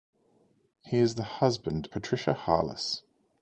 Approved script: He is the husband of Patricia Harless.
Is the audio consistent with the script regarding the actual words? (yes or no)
no